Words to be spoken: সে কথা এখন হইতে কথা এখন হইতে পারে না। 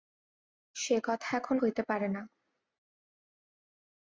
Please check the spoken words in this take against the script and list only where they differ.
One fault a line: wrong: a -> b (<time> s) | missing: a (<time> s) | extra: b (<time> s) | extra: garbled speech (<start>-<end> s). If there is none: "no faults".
missing: কথা এখন হইতে (1.8 s)